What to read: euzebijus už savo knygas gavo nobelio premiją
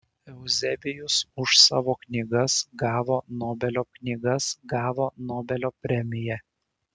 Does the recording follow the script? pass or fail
fail